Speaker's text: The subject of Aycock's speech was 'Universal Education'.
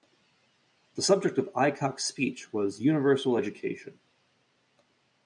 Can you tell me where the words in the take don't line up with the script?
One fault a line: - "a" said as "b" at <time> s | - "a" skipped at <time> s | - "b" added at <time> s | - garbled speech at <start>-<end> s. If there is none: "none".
none